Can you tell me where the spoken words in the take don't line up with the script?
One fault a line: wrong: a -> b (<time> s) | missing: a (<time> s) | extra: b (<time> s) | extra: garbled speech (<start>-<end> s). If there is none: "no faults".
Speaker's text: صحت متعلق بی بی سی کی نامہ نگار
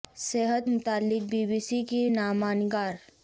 no faults